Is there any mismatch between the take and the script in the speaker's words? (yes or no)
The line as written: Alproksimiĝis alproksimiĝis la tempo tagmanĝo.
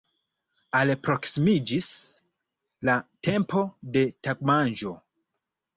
yes